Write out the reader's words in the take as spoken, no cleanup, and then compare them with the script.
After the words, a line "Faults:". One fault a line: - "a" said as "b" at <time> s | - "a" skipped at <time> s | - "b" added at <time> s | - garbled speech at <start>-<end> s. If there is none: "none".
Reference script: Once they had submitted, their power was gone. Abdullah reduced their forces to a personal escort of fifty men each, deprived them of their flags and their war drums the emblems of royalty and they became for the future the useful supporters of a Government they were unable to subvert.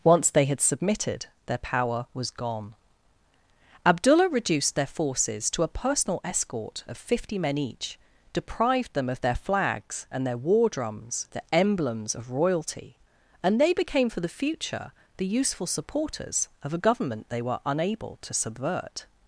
Once they had submitted, their power was gone. Abdullah reduced their forces to a personal escort of fifty men each, deprived them of their flags and their war drums the emblems of royalty and they became for the future the useful supporters of a Government they were unable to subvert.
Faults:
none